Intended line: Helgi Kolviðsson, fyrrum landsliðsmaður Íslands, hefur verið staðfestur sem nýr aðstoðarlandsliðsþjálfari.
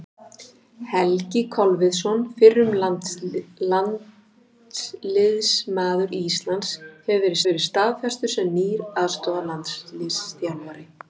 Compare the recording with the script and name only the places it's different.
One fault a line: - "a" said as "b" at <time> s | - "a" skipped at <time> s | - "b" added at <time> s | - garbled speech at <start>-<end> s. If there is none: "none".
- "verið" added at 7.5 s